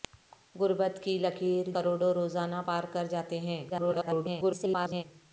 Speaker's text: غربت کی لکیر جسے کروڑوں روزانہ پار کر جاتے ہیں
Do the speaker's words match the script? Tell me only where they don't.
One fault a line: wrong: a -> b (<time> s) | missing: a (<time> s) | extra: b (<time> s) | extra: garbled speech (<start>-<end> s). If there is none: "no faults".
missing: جسے (1.6 s)
extra: garbled speech (3.7-5.0 s)